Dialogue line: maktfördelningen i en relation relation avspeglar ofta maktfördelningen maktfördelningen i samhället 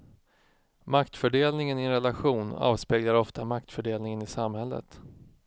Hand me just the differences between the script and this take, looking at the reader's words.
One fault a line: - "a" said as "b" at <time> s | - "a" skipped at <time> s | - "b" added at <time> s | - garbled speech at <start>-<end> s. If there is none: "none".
- "relation" skipped at 2.5 s
- "maktfördelningen" skipped at 4.2 s